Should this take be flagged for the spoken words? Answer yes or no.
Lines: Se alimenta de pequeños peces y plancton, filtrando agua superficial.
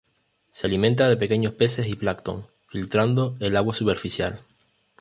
yes